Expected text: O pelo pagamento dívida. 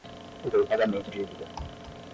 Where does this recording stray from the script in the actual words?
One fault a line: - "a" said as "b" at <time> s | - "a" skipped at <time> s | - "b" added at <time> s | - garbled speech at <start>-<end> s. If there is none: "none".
none